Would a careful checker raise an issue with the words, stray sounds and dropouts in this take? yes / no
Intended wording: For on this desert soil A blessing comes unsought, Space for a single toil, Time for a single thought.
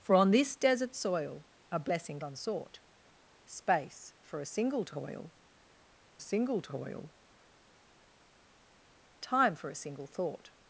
yes